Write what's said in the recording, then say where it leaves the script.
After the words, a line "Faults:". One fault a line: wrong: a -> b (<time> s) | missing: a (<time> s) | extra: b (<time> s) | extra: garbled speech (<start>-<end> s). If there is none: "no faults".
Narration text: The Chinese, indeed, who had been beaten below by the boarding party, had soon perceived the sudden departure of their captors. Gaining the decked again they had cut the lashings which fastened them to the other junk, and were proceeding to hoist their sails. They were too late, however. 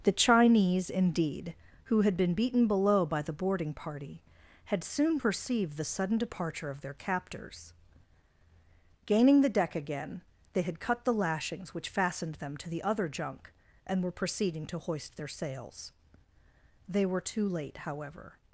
The Chinese, indeed, who had been beaten below by the boarding party, had soon perceived the sudden departure of their captors. Gaining the deck again they had cut the lashings which fastened them to the other junk, and were proceeding to hoist their sails. They were too late, however.
Faults:
wrong: decked -> deck (9.5 s)